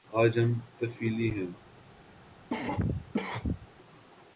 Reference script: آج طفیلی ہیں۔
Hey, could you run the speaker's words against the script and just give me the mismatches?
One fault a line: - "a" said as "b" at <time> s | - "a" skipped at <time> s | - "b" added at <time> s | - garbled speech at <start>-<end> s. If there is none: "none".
- "ہم" added at 0.4 s